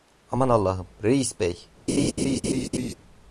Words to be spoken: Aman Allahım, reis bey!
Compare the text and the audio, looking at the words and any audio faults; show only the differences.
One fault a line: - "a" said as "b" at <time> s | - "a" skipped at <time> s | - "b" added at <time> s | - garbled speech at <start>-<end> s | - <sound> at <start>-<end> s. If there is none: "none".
- laugh at 1.9-2.9 s